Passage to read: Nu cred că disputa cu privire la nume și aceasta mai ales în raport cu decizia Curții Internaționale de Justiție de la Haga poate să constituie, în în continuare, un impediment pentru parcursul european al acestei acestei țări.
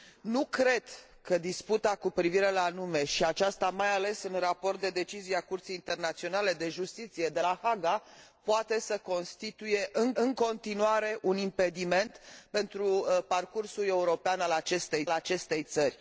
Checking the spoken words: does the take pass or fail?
pass